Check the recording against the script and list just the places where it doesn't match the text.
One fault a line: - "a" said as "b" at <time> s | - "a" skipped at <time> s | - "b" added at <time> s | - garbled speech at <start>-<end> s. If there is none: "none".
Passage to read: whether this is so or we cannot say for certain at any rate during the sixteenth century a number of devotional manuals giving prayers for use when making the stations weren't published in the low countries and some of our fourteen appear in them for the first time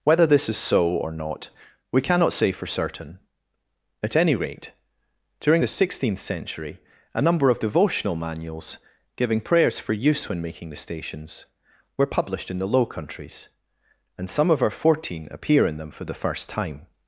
- "not" added at 1.1 s
- "weren't" said as "were" at 12.0 s